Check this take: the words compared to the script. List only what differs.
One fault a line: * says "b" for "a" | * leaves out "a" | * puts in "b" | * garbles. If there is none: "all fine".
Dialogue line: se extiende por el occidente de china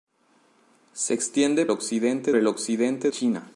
* says "occidente" for "por"
* leaves out "de"